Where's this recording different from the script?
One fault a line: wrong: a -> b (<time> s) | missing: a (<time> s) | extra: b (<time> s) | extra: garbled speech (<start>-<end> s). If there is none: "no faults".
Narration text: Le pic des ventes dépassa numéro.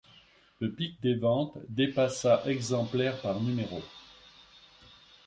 extra: exemplaires par (2.4 s)